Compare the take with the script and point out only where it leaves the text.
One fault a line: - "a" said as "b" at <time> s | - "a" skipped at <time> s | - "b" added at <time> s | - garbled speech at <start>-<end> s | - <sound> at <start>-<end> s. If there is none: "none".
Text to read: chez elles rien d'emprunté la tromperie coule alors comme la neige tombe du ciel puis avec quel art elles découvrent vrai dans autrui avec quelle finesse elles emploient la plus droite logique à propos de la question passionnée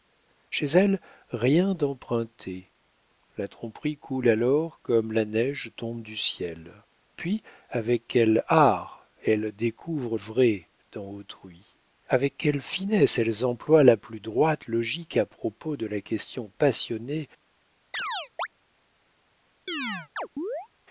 - chirp at 17.9-18.5 s
- chirp at 19.7-20.7 s